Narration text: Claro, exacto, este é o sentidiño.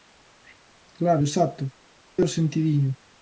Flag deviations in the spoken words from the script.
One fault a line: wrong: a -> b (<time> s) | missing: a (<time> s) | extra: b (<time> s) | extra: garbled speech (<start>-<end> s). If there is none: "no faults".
missing: este (1.6 s)